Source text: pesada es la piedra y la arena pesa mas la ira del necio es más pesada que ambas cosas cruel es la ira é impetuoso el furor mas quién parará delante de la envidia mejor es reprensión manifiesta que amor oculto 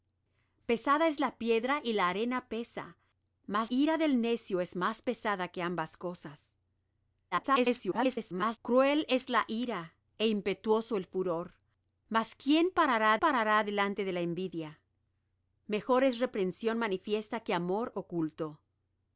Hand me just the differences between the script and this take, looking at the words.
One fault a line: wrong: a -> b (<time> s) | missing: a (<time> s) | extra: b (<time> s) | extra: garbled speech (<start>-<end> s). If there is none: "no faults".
missing: la (3.7 s)
extra: garbled speech (7.3-8.6 s)
extra: parará (13.1 s)